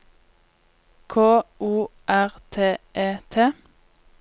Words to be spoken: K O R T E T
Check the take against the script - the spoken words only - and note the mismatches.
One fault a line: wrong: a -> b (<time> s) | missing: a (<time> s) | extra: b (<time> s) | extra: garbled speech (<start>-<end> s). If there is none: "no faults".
no faults